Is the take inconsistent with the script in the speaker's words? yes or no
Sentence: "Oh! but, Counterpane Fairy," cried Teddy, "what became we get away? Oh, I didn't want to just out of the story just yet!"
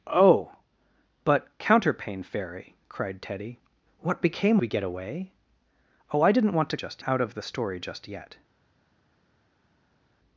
no